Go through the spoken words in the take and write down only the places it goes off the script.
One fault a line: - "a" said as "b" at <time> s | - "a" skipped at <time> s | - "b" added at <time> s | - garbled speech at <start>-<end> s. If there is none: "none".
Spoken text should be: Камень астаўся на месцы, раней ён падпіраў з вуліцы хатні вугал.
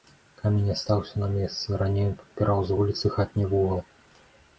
none